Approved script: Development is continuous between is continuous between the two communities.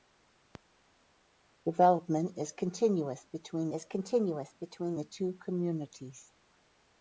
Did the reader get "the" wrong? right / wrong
right